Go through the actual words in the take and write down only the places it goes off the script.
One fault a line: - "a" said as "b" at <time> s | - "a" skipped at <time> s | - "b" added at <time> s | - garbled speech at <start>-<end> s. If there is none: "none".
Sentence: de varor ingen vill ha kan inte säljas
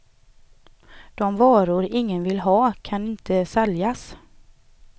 none